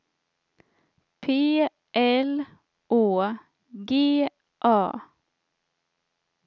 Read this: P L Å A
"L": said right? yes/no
yes